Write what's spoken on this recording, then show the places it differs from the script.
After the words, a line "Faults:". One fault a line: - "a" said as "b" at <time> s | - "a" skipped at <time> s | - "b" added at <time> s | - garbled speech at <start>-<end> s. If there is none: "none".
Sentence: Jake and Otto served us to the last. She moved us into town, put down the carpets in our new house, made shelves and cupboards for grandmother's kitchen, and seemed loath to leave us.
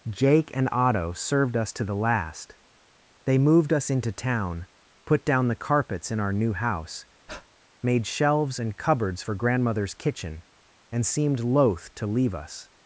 Jake and Otto served us to the last. They moved us into town, put down the carpets in our new house, made shelves and cupboards for grandmother's kitchen, and seemed loath to leave us.
Faults:
- "She" said as "They" at 3.2 s